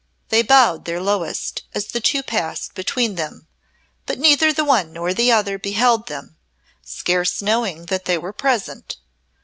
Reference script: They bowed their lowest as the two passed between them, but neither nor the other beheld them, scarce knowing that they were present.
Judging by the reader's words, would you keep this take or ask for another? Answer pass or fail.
fail